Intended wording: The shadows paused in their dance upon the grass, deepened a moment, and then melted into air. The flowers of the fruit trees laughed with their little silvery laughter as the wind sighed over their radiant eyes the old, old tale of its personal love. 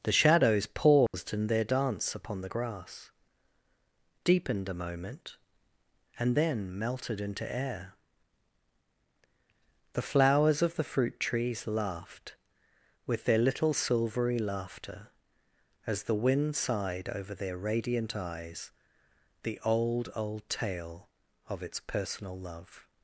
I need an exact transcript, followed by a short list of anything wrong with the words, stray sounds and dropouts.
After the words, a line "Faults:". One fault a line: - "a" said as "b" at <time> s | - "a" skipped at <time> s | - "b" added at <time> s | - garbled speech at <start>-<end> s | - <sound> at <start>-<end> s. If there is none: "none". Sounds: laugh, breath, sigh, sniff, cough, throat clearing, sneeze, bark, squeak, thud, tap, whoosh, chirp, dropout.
The shadows paused in their dance upon the grass, deepened a moment, and then melted into air. The flowers of the fruit trees laughed with their little silvery laughter as the wind sighed over their radiant eyes the old, old tale of its personal love.
Faults:
- dropout at 1.1-1.1 s